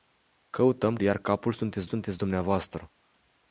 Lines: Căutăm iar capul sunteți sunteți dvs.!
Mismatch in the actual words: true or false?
false